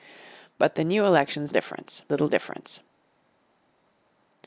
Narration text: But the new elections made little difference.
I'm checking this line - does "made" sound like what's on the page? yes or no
no